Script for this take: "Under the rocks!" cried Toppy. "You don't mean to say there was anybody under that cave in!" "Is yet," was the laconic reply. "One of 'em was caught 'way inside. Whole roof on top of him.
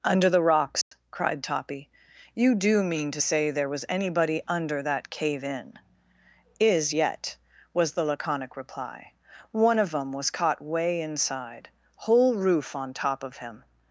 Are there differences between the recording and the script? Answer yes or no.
yes